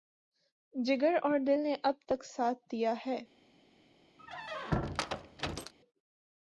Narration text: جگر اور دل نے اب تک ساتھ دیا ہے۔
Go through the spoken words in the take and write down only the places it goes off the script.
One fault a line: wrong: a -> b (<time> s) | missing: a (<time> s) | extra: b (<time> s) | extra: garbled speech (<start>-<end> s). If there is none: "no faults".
no faults